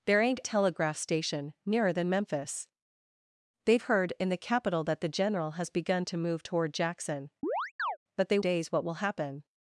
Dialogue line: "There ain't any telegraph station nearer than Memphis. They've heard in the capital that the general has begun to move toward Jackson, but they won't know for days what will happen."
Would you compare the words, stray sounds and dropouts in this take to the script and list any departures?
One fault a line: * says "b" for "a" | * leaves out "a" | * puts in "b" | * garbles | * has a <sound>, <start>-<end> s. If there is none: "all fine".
* leaves out "any"
* has a chirp, 7.4-8.0 s
* leaves out "won't know for"